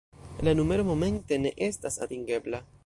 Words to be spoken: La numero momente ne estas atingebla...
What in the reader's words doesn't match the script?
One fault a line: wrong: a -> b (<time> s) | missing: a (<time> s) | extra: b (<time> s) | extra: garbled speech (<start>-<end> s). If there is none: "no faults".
no faults